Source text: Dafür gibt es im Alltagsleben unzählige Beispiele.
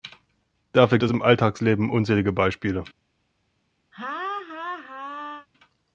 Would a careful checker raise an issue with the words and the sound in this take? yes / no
yes